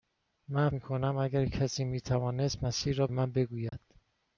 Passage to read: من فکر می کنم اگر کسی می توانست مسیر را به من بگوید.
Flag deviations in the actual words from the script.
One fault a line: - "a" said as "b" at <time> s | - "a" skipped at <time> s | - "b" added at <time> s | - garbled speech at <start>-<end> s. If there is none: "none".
- "فکر" skipped at 0.7 s
- "به" skipped at 3.1 s